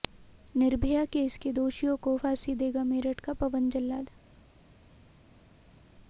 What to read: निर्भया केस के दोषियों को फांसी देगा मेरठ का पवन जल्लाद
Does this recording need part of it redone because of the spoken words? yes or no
no